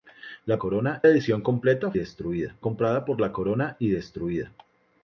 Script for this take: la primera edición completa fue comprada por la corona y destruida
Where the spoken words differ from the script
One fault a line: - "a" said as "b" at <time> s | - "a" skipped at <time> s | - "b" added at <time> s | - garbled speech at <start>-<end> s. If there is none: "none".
- "primera" said as "corona" at 0.6 s
- "fue" said as "destruida" at 1.9 s